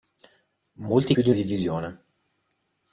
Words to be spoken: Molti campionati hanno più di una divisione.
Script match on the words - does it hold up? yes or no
no